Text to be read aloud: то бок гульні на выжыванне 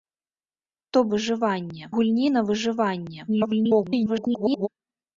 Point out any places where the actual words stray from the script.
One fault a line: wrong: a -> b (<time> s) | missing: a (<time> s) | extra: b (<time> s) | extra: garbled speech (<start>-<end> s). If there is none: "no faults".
wrong: бок -> выжыванне (1.1 s)
extra: garbled speech (3.3-4.7 s)